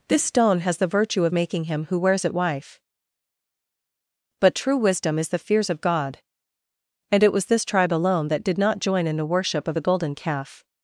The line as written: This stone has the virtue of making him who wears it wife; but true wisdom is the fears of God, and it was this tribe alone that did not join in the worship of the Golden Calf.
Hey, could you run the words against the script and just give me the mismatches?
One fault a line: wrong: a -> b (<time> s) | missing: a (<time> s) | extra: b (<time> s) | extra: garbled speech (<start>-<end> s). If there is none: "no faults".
no faults